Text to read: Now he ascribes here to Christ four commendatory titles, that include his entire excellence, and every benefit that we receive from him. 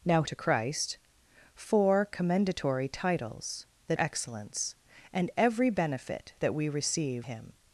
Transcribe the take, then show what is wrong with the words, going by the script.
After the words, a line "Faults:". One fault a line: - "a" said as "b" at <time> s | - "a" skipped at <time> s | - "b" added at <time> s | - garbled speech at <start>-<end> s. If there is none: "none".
Now to Christ four commendatory titles, that excellence, and every benefit that we receive him.
Faults:
- "he ascribes here" skipped at 0.2 s
- "include his entire" skipped at 4.0 s
- "from" skipped at 7.2 s